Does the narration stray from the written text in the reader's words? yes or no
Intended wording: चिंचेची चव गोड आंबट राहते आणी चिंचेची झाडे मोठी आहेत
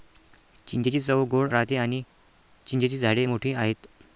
yes